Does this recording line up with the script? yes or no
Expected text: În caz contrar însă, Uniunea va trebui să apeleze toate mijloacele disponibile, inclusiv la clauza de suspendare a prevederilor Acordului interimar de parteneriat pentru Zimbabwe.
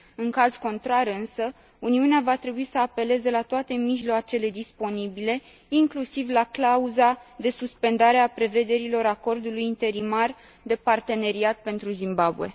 no